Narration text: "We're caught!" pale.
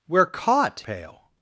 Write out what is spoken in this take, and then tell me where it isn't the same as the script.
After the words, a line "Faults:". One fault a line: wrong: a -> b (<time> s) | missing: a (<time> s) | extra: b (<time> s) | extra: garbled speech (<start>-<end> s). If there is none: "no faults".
"We're caught!" pale.
Faults:
no faults